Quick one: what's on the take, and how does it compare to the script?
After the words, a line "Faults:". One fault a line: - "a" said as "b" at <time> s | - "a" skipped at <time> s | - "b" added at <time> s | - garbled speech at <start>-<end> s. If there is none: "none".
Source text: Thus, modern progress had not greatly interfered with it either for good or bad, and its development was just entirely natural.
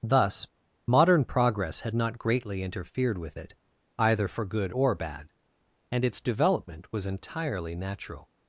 Thus, modern progress had not greatly interfered with it either for good or bad, and its development was entirely natural.
Faults:
- "just" skipped at 7.1 s